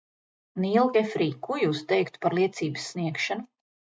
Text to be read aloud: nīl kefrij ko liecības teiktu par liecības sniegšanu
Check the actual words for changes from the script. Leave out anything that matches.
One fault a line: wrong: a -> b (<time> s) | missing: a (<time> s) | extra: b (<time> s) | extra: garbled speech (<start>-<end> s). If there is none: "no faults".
wrong: liecības -> jūs (1.6 s)